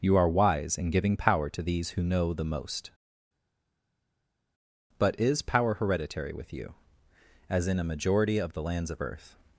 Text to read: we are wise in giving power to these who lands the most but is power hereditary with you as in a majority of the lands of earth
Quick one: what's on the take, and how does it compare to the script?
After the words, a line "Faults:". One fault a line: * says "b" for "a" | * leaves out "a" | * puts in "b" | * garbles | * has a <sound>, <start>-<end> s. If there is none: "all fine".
you are wise in giving power to these who know the most but is power hereditary with you as in a majority of the lands of earth
Faults:
* says "you" for "we"
* says "know" for "lands"